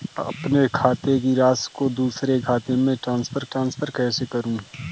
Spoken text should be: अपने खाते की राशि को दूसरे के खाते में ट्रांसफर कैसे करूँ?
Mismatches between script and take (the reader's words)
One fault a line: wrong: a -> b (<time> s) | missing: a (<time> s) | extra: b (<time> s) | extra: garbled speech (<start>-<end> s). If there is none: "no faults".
missing: के (2.4 s)
extra: ट्रांसफर (3.4 s)